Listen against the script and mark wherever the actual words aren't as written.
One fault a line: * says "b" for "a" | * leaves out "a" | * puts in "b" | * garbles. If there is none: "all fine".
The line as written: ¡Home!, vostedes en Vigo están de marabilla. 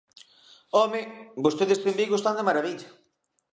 all fine